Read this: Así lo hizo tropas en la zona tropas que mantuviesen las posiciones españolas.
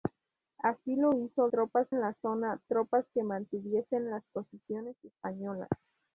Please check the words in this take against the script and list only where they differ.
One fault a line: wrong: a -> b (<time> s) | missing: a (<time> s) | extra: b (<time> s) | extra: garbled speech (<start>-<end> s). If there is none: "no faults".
no faults